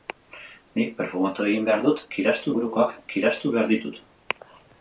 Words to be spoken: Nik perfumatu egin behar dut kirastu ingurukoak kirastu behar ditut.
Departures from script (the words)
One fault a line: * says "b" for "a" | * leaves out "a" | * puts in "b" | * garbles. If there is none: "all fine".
all fine